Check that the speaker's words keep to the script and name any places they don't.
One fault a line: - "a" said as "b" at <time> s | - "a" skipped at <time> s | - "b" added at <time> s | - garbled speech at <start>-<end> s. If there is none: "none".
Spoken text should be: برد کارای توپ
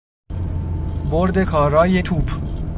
none